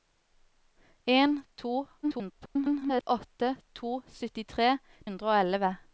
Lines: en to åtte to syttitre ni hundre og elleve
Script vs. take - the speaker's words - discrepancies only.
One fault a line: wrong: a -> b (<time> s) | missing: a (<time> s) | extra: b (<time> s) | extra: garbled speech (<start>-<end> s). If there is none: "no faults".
extra: garbled speech (2.0-3.0 s)
missing: ni (4.7 s)